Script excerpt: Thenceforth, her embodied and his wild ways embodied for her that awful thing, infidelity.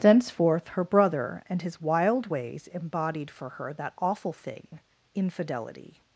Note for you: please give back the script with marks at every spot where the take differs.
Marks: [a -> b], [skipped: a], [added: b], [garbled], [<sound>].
Thenceforth, her [embodied -> brother] and his wild ways embodied for her that awful thing, infidelity.